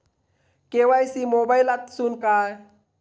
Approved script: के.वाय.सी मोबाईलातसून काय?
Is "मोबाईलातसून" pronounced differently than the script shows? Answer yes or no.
no